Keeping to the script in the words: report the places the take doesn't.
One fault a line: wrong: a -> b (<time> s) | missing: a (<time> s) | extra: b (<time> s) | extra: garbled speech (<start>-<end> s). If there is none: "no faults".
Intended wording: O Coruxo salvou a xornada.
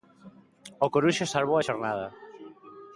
no faults